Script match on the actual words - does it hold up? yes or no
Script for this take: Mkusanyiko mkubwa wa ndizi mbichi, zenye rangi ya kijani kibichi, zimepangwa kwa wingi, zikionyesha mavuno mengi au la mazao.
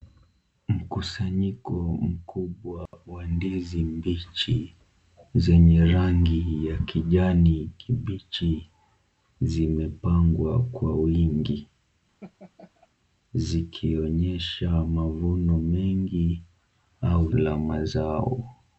yes